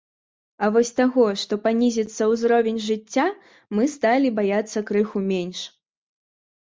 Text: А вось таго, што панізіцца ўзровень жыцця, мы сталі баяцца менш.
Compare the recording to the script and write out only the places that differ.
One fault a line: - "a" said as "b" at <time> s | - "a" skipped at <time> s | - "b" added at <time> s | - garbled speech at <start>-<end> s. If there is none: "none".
- "крыху" added at 4.9 s